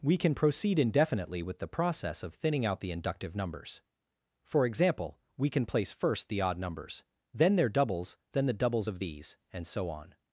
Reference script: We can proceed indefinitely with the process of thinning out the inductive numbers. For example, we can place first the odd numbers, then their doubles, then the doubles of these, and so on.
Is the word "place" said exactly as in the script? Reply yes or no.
yes